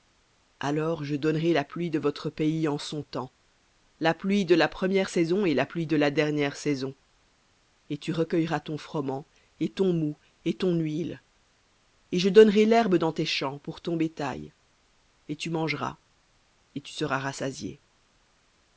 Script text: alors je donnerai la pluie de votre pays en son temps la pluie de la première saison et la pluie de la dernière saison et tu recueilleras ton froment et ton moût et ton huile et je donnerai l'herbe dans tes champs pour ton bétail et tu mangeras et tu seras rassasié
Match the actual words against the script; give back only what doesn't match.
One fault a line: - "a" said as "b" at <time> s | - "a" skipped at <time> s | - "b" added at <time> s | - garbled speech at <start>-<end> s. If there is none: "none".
none